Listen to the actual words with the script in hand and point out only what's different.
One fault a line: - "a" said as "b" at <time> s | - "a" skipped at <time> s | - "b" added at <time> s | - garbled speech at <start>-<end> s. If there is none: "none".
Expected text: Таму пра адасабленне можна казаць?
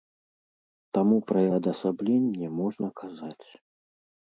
none